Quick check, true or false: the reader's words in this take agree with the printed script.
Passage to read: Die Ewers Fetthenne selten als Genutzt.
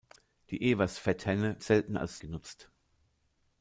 true